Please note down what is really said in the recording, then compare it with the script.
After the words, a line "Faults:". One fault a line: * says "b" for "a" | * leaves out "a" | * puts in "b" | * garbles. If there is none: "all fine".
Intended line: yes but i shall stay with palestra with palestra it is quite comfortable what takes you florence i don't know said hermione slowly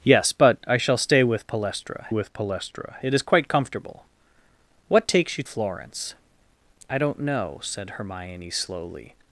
yes but i shall stay with palestra with palestra it is quite comfortable what takes you florence i don't know said hermione slowly
Faults:
all fine